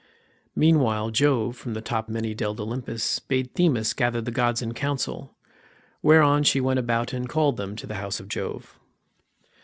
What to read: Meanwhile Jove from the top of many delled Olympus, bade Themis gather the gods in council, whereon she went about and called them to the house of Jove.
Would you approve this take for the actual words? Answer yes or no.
no